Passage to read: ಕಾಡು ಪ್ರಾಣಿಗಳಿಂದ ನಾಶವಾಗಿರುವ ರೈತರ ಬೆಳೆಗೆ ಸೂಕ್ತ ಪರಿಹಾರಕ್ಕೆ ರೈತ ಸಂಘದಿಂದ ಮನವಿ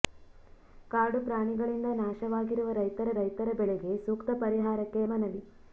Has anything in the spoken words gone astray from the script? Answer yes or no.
yes